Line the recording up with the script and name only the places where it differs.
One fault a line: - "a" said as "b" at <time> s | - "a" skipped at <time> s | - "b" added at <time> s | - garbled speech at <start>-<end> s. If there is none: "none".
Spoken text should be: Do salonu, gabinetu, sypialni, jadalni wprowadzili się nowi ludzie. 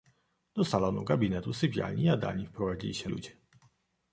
- "nowi" skipped at 3.1 s